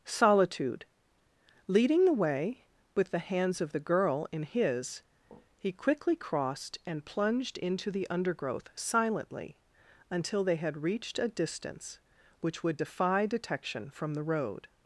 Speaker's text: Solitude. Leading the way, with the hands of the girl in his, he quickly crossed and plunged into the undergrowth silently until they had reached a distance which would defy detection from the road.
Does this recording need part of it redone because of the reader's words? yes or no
no